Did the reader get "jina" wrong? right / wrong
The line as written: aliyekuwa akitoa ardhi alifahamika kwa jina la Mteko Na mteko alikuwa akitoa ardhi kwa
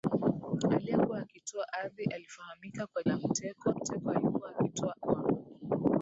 wrong